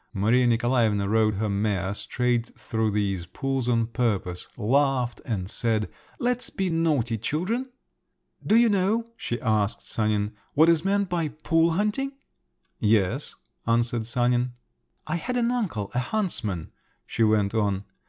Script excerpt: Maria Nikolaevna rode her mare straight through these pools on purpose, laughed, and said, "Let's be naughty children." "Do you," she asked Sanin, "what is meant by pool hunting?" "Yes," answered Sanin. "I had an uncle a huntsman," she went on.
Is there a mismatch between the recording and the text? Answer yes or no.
yes